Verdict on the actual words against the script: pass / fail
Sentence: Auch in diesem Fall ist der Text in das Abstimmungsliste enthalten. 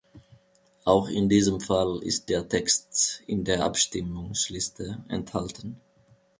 fail